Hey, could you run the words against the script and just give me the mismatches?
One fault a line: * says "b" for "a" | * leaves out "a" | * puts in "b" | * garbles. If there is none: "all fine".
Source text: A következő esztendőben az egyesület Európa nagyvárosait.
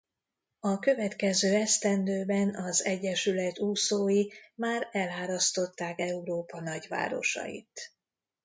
* puts in "úszói már elárasztották"